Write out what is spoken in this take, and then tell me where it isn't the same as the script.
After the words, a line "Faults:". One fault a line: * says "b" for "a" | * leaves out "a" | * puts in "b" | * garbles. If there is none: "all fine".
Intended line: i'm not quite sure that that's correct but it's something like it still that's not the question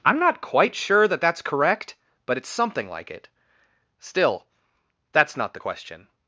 i'm not quite sure that that's correct but it's something like it still that's not the question
Faults:
all fine